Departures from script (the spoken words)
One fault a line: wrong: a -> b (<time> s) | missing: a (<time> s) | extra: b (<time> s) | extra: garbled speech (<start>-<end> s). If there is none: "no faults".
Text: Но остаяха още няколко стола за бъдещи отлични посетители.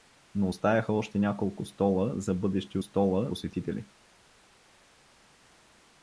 wrong: отлични -> стола (2.8 s)